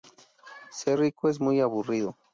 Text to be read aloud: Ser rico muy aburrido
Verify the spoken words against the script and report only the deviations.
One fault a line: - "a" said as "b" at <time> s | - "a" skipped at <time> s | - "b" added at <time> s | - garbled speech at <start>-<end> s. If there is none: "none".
- "es" added at 1.3 s